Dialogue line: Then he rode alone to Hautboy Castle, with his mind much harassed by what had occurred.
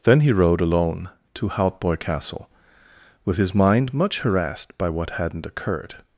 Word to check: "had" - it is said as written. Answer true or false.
false